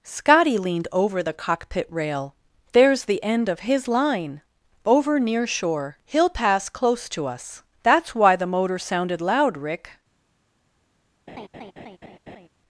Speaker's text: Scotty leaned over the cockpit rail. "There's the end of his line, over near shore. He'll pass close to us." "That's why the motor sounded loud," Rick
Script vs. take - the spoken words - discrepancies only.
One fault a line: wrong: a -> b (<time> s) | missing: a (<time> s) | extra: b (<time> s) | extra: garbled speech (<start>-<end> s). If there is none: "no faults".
no faults